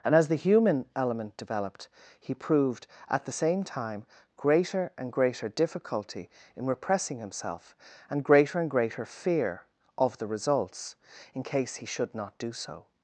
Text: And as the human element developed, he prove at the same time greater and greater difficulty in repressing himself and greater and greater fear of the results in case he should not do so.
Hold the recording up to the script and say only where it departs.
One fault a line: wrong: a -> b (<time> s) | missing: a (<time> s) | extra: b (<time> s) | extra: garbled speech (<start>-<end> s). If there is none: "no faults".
wrong: prove -> proved (2.3 s)